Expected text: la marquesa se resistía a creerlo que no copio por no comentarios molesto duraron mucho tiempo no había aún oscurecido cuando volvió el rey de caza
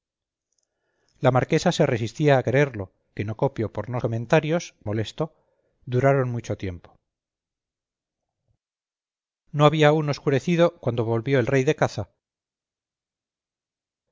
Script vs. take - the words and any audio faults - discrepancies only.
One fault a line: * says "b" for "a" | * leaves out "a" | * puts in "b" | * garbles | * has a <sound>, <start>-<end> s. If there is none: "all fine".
all fine